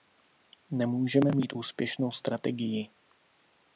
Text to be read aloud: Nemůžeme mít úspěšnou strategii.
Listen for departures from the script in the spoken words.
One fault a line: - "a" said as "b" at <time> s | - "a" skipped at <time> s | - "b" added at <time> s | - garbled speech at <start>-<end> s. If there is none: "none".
none